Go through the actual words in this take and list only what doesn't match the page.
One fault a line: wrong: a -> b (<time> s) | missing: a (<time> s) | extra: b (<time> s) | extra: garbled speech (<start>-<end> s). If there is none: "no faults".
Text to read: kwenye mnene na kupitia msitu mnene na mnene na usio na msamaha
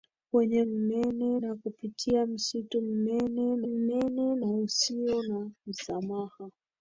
no faults